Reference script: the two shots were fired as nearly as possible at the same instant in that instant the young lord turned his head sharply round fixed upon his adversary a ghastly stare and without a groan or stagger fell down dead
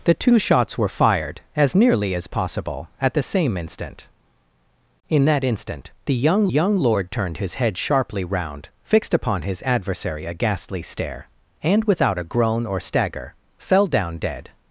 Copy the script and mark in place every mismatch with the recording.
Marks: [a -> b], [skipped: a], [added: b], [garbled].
the two shots were fired as nearly as possible at the same instant in that instant the young [added: young] lord turned his head sharply round fixed upon his adversary a ghastly stare and without a groan or stagger fell down dead